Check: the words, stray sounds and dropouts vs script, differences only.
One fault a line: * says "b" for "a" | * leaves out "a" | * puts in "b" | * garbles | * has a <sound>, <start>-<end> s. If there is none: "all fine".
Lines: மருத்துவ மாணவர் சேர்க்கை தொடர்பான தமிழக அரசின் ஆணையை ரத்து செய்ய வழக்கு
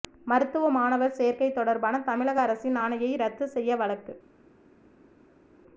all fine